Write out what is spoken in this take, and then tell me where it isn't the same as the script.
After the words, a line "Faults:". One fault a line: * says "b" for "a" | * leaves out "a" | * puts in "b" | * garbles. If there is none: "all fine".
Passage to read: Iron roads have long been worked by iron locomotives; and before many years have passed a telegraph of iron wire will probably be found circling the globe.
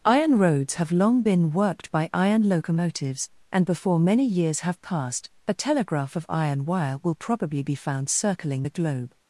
Iron roads have long been worked by iron locomotives; and before many years have passed a telegraph of iron wire will probably be found circling the globe.
Faults:
all fine